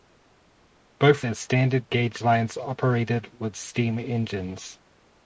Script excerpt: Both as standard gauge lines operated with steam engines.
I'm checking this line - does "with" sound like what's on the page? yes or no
yes